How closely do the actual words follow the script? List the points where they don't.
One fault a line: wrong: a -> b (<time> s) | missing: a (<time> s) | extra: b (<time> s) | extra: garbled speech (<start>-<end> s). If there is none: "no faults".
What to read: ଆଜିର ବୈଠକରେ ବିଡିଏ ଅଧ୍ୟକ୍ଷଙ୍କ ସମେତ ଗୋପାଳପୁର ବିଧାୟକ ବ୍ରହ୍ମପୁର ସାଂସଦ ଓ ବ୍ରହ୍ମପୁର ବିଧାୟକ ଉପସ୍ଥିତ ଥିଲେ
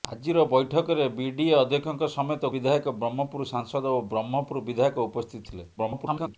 missing: ଗୋପାଳପୁର (2.5 s)
extra: garbled speech (5.8-6.4 s)